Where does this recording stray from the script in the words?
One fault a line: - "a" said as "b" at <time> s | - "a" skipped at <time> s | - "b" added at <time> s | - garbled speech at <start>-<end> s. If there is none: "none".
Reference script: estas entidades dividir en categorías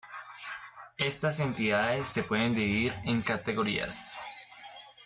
- "se pueden" added at 2.1 s